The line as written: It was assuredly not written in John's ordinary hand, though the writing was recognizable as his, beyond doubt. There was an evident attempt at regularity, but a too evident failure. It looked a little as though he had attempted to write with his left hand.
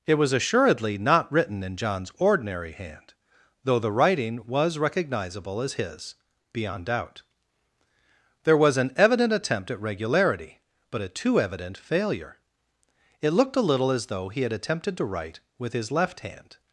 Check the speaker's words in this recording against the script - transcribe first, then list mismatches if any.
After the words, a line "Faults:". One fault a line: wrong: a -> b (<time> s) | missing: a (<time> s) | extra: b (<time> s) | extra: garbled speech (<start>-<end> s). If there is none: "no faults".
It was assuredly not written in John's ordinary hand, though the writing was recognizable as his, beyond doubt. There was an evident attempt at regularity, but a too evident failure. It looked a little as though he had attempted to write with his left hand.
Faults:
no faults